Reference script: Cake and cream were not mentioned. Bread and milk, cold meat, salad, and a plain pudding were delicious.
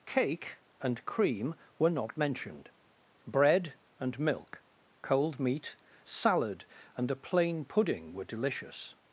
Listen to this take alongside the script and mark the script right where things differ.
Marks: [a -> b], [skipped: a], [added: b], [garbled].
Cake and cream were not mentioned. Bread and milk, cold meat, salad, and a plain pudding were delicious.